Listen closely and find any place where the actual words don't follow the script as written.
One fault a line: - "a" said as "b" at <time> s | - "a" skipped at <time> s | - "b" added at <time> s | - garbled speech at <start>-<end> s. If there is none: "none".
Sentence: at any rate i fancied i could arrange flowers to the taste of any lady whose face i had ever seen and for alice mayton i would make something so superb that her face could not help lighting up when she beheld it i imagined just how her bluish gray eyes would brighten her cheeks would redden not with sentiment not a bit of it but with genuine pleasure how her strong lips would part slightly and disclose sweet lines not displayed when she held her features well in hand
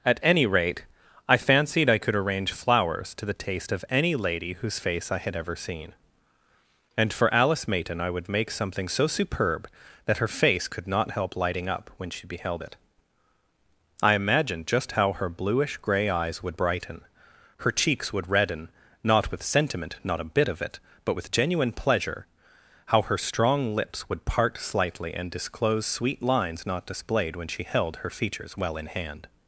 none